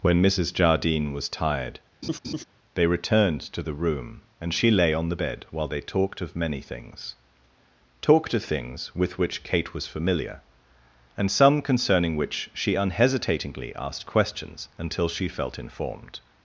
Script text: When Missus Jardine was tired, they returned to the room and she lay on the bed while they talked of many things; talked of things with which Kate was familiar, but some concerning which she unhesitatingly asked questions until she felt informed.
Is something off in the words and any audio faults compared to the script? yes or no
yes